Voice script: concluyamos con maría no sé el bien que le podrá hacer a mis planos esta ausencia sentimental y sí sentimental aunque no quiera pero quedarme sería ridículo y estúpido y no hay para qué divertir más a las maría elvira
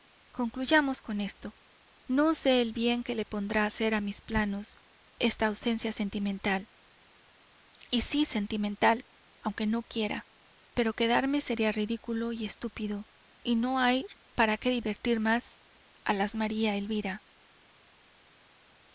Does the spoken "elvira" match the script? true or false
true